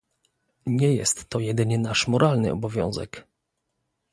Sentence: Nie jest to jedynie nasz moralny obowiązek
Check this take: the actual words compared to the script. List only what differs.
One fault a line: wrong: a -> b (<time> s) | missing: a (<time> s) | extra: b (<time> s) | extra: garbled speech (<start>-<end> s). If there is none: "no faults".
no faults